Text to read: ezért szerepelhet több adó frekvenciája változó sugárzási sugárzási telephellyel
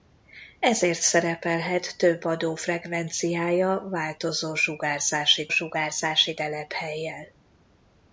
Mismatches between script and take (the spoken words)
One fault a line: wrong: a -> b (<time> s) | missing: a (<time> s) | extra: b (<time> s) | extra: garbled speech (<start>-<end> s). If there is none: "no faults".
no faults